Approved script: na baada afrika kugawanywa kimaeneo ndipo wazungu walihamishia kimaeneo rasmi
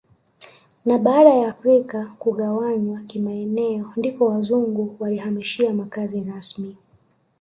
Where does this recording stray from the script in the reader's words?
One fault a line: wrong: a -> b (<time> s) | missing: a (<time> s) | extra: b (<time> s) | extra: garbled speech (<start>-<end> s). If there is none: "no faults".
extra: ya (1.3 s)
wrong: kimaeneo -> makazi (5.7 s)